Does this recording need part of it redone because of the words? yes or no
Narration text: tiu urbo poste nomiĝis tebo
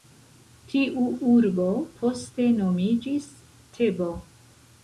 no